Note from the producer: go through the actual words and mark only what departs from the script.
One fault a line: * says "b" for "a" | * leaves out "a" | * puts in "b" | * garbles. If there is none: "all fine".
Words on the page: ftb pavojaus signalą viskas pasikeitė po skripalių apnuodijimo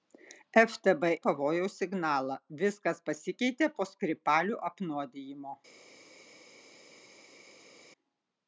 all fine